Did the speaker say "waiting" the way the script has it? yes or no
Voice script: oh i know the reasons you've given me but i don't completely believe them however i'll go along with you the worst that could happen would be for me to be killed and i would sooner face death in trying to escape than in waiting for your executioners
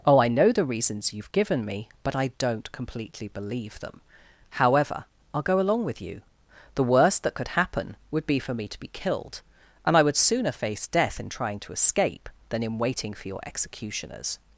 yes